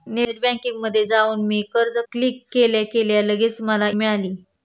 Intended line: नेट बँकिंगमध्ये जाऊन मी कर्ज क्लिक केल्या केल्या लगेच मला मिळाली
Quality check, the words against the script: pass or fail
pass